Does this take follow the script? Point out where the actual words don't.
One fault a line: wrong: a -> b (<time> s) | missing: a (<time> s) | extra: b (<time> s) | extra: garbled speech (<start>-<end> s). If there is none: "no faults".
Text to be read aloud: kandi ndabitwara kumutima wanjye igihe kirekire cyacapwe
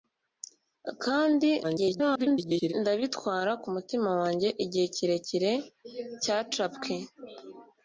extra: garbled speech (1.6-2.7 s)